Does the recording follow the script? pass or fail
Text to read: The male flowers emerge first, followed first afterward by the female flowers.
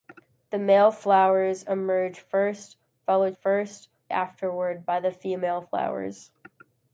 pass